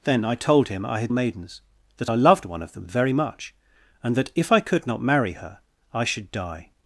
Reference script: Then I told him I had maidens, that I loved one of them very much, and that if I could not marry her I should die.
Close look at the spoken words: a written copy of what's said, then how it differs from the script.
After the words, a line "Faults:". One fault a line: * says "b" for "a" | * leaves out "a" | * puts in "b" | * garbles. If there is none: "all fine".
Then I told him I had maidens, that I loved one of them very much, and that if I could not marry her I should die.
Faults:
all fine